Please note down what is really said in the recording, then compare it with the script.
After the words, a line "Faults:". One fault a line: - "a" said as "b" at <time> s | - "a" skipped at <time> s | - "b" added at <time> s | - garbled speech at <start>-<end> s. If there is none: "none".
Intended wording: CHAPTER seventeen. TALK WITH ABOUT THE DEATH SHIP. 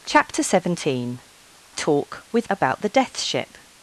CHAPTER seventeen. TALK WITH ABOUT THE DEATH SHIP.
Faults:
none